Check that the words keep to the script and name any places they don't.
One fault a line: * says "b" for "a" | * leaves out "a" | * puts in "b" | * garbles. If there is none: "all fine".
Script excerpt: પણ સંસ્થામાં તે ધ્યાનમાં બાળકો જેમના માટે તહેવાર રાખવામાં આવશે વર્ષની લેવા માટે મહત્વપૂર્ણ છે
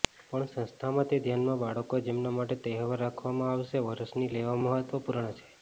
* leaves out "માટે"